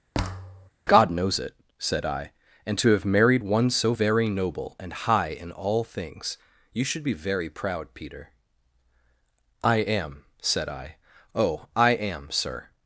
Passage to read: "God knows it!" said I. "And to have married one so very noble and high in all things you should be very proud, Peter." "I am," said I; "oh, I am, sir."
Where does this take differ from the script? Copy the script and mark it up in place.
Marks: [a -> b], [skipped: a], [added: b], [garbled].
"God knows it!" said I. "And to have married one so very noble and high in all things you should be very proud, Peter." "I am," said I; "oh, I am, sir."